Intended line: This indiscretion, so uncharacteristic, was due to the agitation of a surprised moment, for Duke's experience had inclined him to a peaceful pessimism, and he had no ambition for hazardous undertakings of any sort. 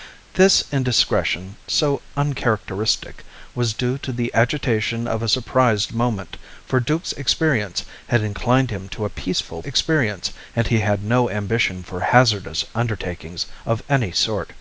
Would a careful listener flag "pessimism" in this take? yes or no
yes